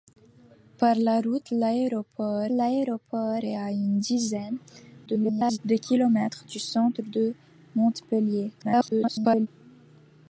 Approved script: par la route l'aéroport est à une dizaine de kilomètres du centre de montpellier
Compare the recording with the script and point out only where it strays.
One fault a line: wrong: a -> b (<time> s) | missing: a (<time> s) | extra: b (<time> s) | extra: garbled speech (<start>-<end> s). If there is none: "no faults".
extra: l'aéroport (2.5 s)
extra: garbled speech (5.1-5.6 s)
extra: garbled speech (8.6-9.5 s)